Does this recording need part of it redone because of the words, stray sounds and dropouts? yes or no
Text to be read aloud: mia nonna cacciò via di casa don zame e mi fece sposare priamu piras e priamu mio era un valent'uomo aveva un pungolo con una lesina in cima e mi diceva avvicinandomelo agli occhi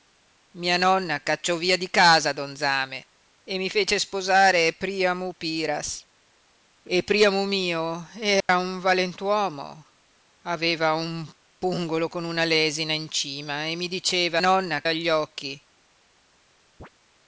yes